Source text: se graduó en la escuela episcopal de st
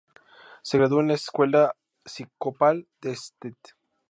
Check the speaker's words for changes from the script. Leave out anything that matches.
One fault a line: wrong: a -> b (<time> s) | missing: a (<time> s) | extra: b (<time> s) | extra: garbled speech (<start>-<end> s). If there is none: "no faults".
no faults